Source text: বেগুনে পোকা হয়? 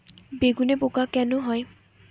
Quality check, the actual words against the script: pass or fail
fail